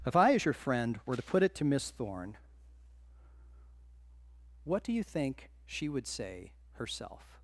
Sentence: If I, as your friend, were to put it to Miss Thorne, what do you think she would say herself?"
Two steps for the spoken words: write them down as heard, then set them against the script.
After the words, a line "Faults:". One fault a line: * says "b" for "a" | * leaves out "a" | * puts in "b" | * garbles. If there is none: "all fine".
If I, as your friend, were to put it to Miss Thorne, what do you think she would say herself?"
Faults:
all fine